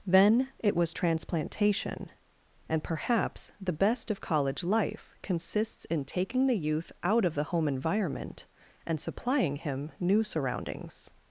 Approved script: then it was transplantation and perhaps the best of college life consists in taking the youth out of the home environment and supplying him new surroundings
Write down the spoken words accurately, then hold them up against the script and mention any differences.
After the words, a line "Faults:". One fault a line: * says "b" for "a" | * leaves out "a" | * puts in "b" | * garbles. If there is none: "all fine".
then it was transplantation and perhaps the best of college life consists in taking the youth out of the home environment and supplying him new surroundings
Faults:
all fine